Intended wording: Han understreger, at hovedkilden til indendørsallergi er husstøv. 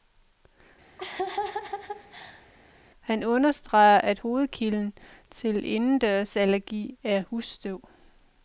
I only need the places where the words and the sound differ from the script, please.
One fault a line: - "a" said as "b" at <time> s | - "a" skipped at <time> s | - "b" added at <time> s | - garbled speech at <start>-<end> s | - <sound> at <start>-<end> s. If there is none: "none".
- laugh at 1.0-2.5 s